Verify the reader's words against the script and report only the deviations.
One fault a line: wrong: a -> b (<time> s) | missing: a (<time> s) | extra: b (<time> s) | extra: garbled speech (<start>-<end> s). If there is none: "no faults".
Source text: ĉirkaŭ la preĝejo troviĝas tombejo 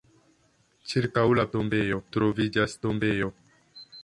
wrong: preĝejo -> tombejo (1.6 s)